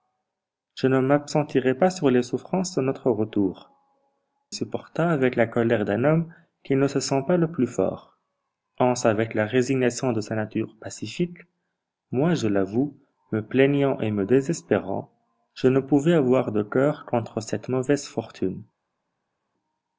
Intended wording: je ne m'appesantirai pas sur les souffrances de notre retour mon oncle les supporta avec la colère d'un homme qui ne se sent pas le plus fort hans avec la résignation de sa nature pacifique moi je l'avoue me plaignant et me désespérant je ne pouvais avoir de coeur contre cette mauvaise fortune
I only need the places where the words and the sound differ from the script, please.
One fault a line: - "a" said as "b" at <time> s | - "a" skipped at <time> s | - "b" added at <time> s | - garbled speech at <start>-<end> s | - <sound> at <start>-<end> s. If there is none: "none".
- "mon oncle les" skipped at 3.7 s